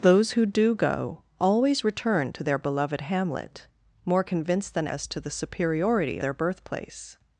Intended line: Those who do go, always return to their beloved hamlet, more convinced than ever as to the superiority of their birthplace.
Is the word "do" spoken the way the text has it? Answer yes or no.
yes